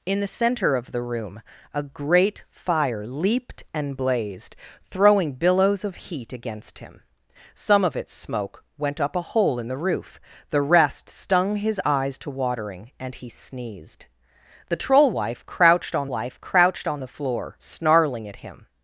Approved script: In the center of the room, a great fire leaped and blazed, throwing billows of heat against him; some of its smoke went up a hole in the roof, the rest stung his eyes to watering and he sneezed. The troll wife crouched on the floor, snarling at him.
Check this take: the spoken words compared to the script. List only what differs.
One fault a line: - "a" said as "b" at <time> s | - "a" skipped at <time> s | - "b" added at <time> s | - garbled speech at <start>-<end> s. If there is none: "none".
- "wife crouched on" added at 16.1 s